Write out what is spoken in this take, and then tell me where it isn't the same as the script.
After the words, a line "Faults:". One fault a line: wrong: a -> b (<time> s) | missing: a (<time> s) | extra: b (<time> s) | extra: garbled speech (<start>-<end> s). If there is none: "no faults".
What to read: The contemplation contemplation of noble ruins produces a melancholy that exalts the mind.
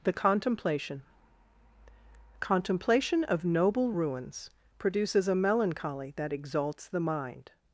The contemplation contemplation of noble ruins produces a melancholy that exalts the mind.
Faults:
no faults